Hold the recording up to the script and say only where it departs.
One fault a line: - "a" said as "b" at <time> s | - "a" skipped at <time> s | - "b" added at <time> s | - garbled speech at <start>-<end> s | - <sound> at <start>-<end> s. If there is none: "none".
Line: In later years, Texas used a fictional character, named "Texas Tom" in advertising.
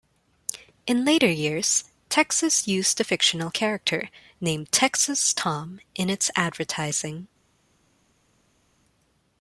- "its" added at 6.1 s